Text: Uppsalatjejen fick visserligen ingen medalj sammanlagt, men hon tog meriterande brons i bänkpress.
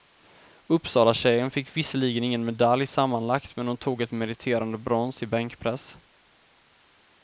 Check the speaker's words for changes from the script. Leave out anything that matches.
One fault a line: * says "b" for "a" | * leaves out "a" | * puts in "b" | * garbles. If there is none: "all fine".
* puts in "ett"